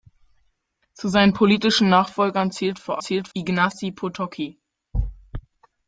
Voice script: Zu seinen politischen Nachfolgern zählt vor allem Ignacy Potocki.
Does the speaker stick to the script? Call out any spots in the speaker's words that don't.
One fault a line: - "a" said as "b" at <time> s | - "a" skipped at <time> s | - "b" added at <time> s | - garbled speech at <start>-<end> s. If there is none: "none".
- "allem" said as "zählt" at 3.0 s